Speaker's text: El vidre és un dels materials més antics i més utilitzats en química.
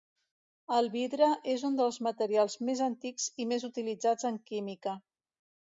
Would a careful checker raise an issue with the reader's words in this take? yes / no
no